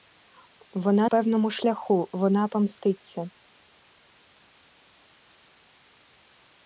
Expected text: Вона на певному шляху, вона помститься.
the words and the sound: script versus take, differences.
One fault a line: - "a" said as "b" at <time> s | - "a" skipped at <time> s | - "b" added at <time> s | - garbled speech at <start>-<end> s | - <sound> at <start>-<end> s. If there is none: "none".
- "на" skipped at 1.1 s